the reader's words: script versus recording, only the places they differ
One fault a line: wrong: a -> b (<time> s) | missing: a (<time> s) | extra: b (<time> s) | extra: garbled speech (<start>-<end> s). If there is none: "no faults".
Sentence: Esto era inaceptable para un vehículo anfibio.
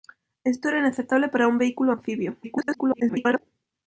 extra: garbled speech (2.4-3.4 s)